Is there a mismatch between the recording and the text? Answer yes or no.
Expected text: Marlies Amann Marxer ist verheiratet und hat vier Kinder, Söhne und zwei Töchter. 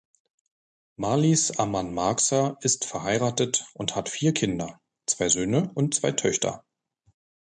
yes